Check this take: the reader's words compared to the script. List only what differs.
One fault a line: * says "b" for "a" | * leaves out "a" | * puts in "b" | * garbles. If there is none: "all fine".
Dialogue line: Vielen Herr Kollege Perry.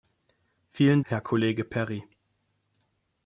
all fine